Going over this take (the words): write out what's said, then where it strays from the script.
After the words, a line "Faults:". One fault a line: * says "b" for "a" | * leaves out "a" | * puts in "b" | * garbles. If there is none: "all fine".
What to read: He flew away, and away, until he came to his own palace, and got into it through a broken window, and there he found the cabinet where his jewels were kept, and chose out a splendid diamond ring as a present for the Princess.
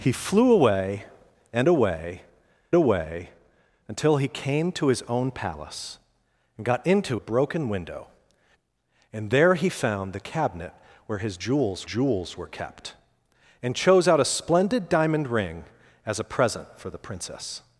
He flew away, and away away, until he came to his own palace, and got into a broken window, and there he found the cabinet where his jewels jewels were kept, and chose out a splendid diamond ring as a present for the Princess.
Faults:
* puts in "away"
* leaves out "it through"
* puts in "jewels"